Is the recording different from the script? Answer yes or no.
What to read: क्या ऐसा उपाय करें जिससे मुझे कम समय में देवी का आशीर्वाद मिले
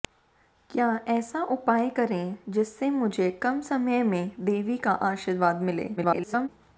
yes